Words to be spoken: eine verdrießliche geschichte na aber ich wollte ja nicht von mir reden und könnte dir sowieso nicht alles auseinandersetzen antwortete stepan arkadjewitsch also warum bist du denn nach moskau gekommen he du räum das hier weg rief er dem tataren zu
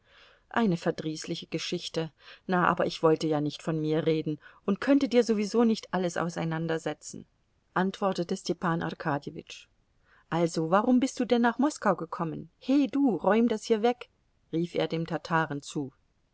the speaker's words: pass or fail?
pass